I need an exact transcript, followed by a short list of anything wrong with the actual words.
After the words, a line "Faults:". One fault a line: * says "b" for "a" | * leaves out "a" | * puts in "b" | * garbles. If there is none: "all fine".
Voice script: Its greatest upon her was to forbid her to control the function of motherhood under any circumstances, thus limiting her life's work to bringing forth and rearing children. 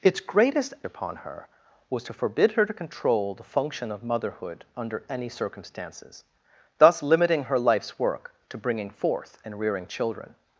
Its greatest upon her was to forbid her to control the function of motherhood under any circumstances, thus limiting her life's work to bringing forth and rearing children.
Faults:
all fine